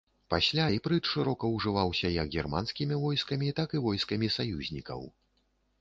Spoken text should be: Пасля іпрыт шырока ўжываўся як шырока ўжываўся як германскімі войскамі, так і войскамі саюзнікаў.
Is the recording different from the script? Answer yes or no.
yes